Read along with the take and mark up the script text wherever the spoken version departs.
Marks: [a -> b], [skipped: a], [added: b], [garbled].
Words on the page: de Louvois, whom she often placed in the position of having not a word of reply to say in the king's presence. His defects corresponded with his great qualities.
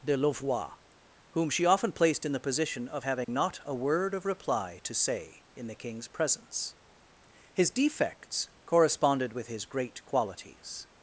de Louvois, whom she often placed in the position of having not a word of reply to say in the king's presence. His defects corresponded with his great qualities.